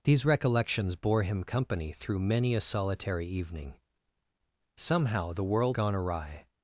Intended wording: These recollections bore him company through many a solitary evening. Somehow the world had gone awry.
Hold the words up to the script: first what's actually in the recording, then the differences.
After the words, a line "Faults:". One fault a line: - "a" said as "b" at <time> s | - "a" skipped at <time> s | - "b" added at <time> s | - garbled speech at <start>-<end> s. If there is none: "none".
These recollections bore him company through many a solitary evening. Somehow the world gone awry.
Faults:
- "had" skipped at 5.8 s